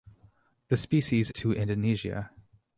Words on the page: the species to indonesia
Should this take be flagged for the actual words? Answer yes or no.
no